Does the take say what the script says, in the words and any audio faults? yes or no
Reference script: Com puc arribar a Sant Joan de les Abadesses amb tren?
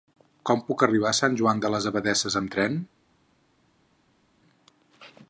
yes